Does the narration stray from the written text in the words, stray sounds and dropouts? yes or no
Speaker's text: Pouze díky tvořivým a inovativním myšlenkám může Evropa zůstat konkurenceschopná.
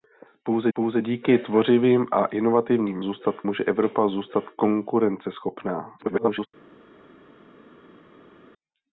yes